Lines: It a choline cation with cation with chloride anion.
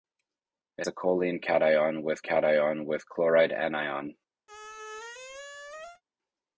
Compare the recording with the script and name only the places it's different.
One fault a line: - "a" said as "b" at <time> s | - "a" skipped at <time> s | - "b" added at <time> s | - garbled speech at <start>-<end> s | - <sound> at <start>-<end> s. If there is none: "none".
- squeak at 4.5-6.0 s